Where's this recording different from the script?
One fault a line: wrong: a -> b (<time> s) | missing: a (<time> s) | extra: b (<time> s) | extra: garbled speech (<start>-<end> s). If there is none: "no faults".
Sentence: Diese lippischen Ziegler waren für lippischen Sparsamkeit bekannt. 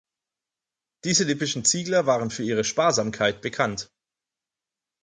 wrong: lippischen -> ihre (2.4 s)